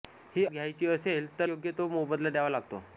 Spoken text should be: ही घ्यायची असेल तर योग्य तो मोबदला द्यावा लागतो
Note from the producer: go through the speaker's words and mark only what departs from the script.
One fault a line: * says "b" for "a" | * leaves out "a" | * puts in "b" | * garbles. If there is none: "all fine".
all fine